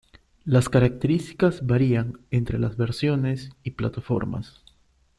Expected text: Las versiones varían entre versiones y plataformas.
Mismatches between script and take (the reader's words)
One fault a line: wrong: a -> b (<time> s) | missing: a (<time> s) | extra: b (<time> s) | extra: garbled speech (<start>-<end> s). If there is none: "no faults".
wrong: versiones -> características (0.7 s)
extra: las (2.6 s)